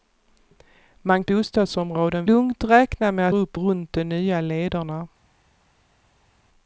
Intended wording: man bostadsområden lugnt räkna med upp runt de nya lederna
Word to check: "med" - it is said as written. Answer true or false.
true